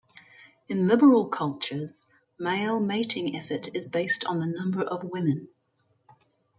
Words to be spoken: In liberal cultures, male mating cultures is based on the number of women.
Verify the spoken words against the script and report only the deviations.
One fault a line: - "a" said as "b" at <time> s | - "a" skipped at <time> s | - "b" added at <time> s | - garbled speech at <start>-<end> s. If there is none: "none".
- "cultures" said as "effort" at 3.3 s